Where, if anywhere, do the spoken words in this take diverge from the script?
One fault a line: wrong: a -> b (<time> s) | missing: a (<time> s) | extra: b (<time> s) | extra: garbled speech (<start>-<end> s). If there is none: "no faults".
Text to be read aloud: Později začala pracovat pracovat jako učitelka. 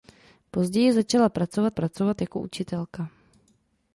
no faults